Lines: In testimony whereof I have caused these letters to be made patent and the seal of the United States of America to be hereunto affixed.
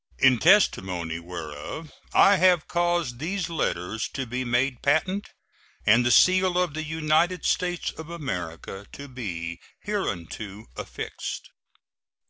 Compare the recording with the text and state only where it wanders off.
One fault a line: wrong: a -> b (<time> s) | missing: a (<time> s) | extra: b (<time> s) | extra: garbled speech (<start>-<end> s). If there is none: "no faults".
no faults